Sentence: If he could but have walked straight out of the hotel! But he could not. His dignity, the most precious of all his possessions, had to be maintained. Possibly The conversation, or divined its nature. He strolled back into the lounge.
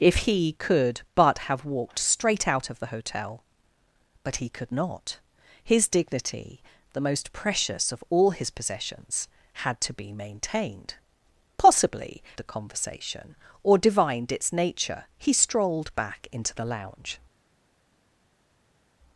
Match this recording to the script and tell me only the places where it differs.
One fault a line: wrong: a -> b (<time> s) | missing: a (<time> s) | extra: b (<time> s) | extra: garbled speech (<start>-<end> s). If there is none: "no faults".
no faults